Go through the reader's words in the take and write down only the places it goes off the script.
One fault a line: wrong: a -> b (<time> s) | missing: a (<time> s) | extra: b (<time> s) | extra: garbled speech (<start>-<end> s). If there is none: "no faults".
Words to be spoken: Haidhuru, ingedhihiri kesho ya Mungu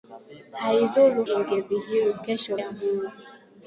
no faults